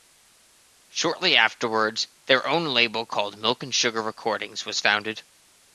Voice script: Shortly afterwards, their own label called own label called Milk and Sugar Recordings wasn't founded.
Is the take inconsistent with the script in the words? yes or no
yes